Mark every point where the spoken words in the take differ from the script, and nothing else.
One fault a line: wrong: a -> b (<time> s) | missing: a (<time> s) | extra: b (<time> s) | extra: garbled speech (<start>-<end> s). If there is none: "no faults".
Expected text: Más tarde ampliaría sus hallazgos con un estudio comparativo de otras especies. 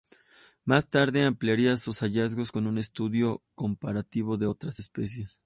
no faults